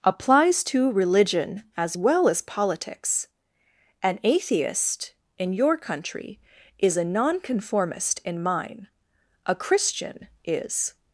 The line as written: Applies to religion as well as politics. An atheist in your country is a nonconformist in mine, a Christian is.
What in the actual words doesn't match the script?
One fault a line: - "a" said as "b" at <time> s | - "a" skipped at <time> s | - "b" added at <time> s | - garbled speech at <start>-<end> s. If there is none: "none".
none